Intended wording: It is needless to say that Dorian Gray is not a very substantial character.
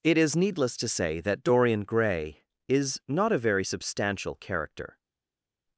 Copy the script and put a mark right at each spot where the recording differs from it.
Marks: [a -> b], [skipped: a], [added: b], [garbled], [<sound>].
It is needless to say that Dorian Gray is not a very substantial character.